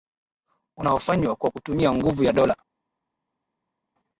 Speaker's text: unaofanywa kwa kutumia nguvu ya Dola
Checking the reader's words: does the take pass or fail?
pass